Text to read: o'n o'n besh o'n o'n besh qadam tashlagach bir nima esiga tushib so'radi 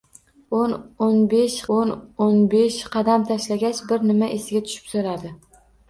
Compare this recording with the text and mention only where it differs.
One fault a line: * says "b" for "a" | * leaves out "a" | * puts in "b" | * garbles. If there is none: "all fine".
all fine